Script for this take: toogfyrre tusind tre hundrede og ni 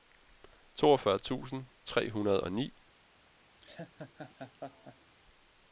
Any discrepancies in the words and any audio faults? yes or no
yes